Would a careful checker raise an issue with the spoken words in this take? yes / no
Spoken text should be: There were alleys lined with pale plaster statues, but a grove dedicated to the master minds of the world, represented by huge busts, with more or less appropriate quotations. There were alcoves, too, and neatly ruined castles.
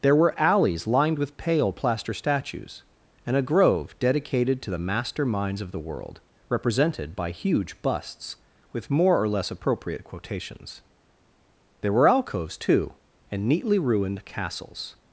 yes